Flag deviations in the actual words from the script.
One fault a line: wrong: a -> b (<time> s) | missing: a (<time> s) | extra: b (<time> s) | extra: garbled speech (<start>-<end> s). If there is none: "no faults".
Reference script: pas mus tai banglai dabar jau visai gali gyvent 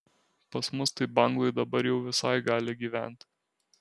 no faults